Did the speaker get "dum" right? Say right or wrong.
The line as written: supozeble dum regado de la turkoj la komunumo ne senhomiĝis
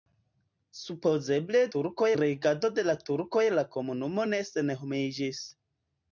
wrong